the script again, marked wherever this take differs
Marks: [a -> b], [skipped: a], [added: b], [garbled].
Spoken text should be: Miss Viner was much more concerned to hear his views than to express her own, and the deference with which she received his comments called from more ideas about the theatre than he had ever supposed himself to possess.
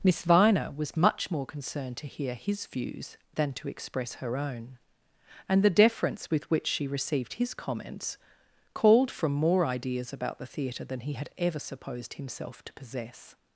Miss Viner was much more concerned to hear his views than to express her own, and the deference with which she received his comments called from more ideas about the theatre than he had ever supposed himself to possess.